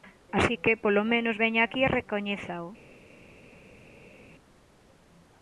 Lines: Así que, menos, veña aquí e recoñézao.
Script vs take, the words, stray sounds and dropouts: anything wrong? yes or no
yes